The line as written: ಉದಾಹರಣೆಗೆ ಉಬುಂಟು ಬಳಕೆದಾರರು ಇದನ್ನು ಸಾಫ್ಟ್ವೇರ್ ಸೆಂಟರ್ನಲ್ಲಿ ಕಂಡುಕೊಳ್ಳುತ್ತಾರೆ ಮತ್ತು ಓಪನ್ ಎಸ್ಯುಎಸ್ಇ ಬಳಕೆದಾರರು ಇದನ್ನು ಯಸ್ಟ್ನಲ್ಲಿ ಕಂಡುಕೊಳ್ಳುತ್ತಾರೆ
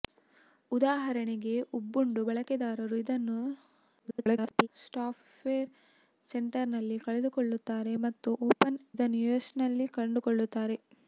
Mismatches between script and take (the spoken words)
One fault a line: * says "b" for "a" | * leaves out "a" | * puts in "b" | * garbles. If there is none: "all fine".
* garbles
* leaves out "ಎಸ್ಯುಎಸ್ಇ ಬಳಕೆದಾರರು"